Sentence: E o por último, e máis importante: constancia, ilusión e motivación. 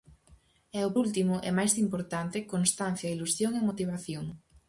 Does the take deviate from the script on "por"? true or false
true